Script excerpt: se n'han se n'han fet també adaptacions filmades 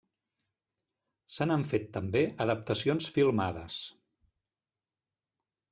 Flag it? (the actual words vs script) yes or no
yes